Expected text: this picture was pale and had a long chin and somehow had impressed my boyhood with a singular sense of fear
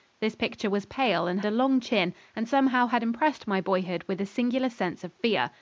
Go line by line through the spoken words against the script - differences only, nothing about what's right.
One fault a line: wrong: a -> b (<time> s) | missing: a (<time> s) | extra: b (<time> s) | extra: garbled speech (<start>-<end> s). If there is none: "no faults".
missing: had (1.4 s)